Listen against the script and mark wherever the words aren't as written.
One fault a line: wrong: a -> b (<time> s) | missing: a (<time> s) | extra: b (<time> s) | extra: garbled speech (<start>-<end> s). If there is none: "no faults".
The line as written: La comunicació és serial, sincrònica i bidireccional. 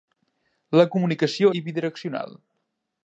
missing: és serial sincrònica (1.5 s)